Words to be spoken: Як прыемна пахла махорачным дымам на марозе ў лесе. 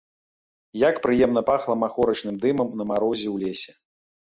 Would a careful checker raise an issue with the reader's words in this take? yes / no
no